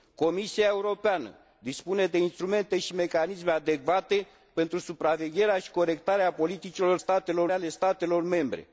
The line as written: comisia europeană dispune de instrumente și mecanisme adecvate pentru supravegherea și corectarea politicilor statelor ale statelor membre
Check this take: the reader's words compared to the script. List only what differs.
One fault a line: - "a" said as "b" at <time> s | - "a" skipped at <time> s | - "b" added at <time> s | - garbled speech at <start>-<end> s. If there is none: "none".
none